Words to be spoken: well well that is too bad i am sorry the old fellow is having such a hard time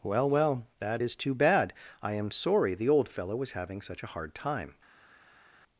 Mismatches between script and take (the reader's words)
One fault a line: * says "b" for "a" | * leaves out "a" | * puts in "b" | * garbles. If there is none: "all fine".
* says "was" for "is"